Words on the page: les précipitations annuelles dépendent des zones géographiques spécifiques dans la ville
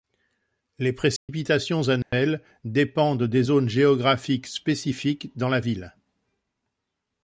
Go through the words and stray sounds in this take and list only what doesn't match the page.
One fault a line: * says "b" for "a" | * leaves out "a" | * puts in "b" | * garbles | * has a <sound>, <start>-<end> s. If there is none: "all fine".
* has a dropout, 1.2-1.3 s
* has a dropout, 2.0-2.1 s